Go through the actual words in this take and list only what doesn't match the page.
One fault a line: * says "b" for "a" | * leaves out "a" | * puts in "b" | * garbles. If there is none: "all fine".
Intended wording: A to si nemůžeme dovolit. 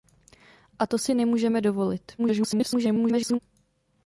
* garbles